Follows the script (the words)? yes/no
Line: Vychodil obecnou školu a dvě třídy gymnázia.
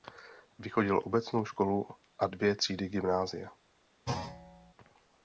yes